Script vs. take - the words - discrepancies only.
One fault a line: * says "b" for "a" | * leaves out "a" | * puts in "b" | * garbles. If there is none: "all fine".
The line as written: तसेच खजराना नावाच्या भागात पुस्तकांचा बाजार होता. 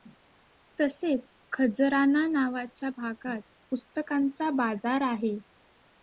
* says "आहे" for "होता"